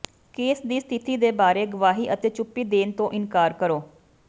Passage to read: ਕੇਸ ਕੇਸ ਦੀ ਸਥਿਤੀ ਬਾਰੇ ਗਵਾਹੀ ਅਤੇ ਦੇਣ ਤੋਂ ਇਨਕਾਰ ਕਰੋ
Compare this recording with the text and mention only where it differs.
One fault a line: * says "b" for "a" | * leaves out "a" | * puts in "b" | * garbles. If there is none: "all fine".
* leaves out "ਕੇਸ"
* puts in "ਦੇ"
* puts in "ਚੁੱਪੀ"